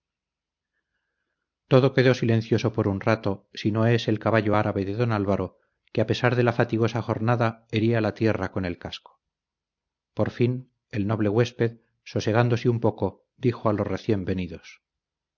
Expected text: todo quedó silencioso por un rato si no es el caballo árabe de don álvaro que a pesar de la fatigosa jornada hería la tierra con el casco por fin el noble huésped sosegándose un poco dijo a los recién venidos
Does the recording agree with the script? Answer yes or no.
yes